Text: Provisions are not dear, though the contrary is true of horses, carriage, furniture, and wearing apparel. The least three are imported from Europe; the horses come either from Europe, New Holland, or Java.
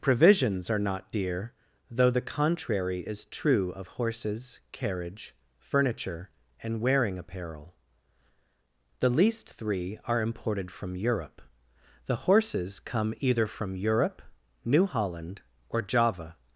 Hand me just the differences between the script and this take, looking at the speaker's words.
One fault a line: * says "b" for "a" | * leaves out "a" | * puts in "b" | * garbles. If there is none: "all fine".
all fine